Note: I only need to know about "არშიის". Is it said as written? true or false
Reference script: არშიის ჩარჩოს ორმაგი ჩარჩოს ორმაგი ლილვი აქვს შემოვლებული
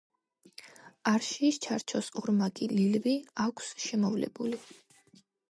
true